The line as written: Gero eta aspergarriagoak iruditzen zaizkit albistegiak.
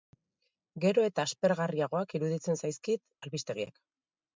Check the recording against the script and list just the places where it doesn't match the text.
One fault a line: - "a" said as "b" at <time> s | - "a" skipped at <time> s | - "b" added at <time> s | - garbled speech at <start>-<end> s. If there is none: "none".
none